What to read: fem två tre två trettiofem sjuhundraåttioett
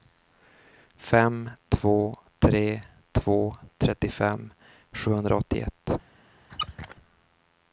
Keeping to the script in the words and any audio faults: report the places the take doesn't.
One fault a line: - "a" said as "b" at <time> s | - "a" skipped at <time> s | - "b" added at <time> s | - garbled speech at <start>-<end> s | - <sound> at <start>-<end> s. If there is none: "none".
- squeak at 6.5-7.0 s